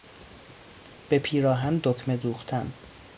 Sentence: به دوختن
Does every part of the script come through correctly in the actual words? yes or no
no